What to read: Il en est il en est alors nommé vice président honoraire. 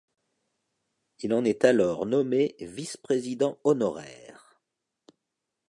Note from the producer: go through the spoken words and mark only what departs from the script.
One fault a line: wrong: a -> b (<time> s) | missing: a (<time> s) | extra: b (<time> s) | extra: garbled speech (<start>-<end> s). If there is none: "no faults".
missing: il en est (1.6 s)